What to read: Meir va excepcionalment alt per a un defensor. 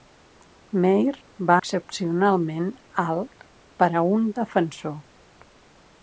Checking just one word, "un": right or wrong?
right